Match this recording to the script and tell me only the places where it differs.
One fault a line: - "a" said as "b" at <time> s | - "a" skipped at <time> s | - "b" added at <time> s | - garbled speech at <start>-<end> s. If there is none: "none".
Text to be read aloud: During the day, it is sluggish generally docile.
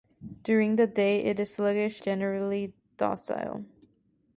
none